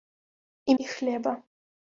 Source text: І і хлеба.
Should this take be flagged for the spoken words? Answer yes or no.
no